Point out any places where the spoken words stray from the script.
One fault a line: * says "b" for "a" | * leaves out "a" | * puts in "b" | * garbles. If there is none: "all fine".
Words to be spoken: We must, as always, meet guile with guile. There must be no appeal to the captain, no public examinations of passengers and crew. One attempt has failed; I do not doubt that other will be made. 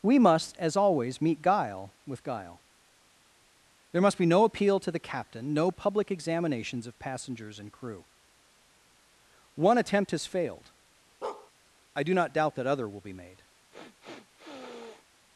all fine